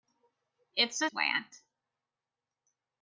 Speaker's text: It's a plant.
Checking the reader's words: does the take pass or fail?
pass